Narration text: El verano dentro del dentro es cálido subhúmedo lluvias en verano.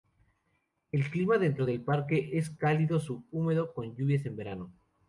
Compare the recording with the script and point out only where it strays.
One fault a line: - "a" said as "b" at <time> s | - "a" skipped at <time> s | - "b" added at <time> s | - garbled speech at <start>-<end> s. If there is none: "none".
- "verano" said as "clima" at 1.1 s
- "dentro" said as "parque" at 1.8 s
- "con" added at 3.7 s